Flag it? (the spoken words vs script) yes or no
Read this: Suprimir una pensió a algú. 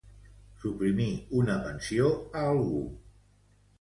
no